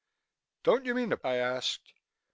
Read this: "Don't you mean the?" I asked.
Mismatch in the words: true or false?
false